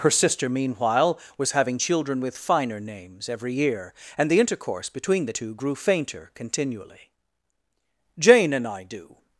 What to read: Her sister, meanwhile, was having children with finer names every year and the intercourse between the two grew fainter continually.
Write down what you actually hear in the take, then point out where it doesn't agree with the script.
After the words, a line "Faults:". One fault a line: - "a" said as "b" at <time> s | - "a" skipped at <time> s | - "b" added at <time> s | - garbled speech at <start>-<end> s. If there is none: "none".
Her sister, meanwhile, was having children with finer names every year and the intercourse between the two grew fainter continually. "Jane and I do
Faults:
- "Jane and I do" added at 8.2 s